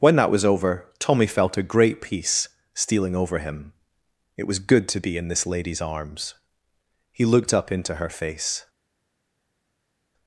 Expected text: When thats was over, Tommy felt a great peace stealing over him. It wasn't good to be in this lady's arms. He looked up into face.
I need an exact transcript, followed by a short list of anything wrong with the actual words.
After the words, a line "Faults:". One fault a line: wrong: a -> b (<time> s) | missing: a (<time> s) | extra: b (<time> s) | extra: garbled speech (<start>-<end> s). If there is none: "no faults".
When that was over, Tommy felt a great peace stealing over him. It was good to be in this lady's arms. He looked up into her face.
Faults:
wrong: thats -> that (0.1 s)
wrong: wasn't -> was (4.5 s)
extra: her (8.0 s)